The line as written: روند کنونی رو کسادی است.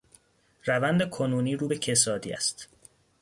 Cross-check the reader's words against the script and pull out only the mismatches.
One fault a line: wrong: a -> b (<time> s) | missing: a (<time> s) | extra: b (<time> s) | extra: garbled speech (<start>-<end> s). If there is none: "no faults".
extra: به (1.7 s)